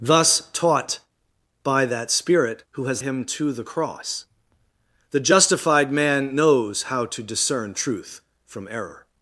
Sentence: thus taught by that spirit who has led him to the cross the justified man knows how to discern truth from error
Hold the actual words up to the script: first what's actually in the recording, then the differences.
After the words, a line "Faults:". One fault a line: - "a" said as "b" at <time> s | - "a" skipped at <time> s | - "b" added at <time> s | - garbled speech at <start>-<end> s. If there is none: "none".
thus taught by that spirit who has him to the cross the justified man knows how to discern truth from error
Faults:
- "led" skipped at 3.0 s